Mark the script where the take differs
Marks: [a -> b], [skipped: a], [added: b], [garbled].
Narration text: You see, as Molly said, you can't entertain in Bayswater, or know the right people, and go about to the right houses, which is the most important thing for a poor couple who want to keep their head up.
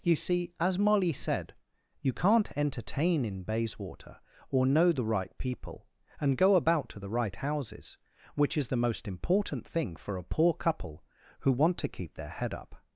You see, as Molly said, you can't entertain in Bayswater, or know the right people, and go about to the right houses, which is the most important thing for a poor couple who want to keep their head up.